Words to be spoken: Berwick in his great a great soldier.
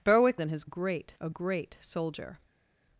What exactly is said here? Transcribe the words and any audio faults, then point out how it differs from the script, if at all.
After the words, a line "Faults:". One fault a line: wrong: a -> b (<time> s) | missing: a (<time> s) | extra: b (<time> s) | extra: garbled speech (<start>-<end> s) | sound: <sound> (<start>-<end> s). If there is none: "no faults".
Berwick in his great a great soldier.
Faults:
no faults